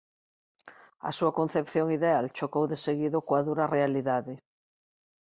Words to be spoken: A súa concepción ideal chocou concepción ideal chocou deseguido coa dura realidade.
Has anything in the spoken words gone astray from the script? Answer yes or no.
yes